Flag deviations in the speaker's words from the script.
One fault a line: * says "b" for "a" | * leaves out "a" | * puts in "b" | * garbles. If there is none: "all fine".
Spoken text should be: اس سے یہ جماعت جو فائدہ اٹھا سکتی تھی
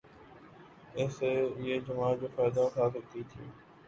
all fine